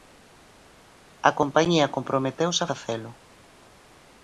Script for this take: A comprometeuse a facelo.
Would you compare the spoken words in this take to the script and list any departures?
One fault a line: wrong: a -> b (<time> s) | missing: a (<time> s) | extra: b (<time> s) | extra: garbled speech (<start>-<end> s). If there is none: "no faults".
extra: compañía (1.4 s)